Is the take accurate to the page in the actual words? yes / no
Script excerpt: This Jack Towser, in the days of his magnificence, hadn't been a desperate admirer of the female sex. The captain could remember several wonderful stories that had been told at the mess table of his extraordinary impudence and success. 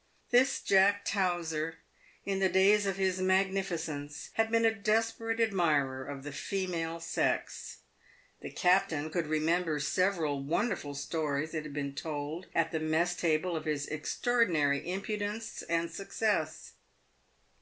no